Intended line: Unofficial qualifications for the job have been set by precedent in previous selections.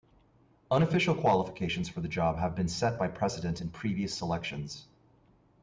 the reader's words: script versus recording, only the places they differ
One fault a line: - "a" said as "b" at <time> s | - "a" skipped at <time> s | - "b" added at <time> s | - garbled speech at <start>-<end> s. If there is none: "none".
none